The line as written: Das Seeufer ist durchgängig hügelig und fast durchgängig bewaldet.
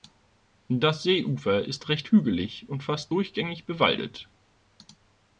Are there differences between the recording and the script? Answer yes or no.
yes